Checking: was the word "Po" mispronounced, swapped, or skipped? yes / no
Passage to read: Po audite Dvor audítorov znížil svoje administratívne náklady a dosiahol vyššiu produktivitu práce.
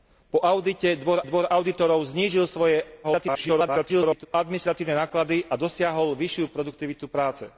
no